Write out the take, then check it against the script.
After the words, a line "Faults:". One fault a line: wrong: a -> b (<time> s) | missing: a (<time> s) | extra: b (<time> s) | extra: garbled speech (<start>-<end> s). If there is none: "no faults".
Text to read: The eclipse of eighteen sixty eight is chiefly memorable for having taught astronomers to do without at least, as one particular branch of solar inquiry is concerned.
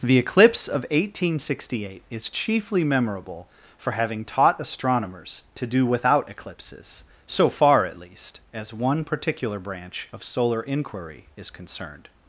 The eclipse of eighteen sixty eight is chiefly memorable for having taught astronomers to do without eclipses, so far, at least, as one particular branch of solar inquiry is concerned.
Faults:
extra: eclipses so far (6.3 s)